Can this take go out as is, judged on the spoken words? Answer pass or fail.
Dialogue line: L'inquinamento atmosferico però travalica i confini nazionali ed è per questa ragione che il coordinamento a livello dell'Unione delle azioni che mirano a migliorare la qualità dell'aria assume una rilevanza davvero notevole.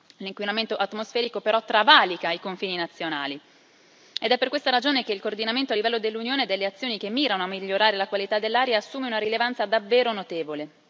pass